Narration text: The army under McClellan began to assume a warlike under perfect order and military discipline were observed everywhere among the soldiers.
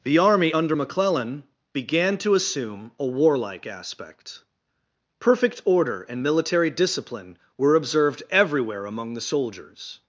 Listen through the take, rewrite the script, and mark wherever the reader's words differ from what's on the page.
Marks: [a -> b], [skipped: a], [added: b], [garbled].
The army under McClellan began to assume a warlike [under -> aspect] perfect order and military discipline were observed everywhere among the soldiers.